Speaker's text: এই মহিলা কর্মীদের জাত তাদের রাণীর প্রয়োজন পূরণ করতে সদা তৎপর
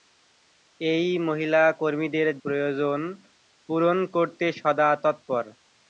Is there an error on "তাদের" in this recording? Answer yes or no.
yes